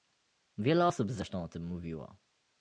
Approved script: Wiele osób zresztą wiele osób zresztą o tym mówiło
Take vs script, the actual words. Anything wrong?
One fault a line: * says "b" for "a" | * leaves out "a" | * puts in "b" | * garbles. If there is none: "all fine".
* leaves out "wiele osób zresztą"